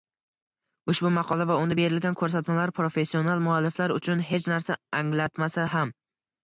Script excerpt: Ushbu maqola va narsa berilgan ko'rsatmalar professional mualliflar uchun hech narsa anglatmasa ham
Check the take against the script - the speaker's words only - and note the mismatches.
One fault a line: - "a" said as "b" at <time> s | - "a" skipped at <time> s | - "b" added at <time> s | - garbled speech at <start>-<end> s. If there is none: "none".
- "narsa" said as "unda" at 1.6 s